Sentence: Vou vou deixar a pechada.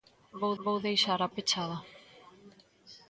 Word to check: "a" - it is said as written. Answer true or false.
true